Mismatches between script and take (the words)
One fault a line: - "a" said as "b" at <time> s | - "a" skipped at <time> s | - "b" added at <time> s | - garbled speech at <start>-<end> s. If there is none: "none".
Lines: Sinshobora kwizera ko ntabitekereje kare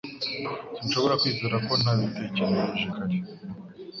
none